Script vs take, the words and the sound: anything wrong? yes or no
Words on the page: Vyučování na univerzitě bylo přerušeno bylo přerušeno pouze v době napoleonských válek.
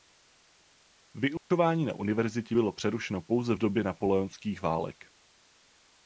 yes